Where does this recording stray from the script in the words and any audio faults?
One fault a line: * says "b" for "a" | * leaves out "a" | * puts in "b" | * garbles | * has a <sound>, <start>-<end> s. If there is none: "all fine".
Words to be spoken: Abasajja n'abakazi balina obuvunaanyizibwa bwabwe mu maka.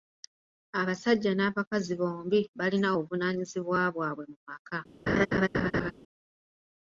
* puts in "bombi"
* has a laugh, 5.1-5.9 s